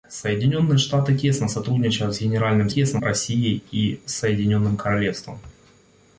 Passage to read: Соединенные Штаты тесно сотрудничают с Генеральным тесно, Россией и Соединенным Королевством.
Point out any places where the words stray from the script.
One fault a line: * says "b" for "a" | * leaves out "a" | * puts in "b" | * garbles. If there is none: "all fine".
all fine